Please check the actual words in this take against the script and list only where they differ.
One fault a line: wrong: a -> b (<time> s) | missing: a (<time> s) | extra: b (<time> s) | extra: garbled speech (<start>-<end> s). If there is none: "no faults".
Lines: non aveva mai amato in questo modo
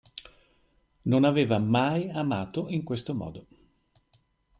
no faults